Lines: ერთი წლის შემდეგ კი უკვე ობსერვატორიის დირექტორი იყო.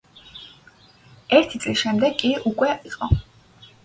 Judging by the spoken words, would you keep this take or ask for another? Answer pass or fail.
fail